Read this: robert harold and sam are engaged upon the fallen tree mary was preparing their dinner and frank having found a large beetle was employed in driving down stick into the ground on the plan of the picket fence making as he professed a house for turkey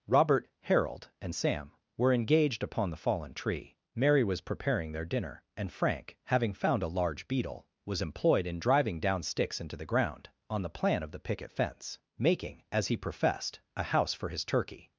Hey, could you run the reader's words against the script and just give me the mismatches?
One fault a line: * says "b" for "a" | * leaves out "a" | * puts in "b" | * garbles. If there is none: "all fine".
* says "were" for "are"
* says "sticks" for "stick"
* puts in "his"